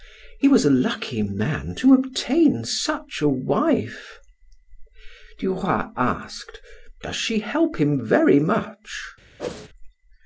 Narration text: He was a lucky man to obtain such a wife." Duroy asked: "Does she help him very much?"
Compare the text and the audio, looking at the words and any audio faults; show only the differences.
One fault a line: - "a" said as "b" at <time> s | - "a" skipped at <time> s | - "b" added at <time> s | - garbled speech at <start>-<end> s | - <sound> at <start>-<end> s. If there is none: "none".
- whoosh at 9.4-9.7 s